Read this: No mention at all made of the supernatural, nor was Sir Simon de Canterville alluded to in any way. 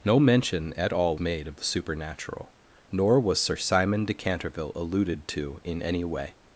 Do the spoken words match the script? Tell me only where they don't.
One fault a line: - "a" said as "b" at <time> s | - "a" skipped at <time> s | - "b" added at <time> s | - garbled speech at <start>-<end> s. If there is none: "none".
none